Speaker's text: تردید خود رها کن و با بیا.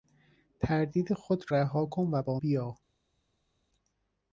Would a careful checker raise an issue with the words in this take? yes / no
no